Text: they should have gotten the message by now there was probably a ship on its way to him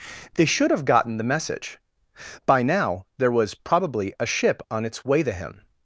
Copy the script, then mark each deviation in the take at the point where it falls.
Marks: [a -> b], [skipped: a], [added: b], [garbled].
they should have gotten the message by now there was probably a ship on its way to him